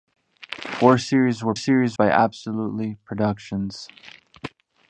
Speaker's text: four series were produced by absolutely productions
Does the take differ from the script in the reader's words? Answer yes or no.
yes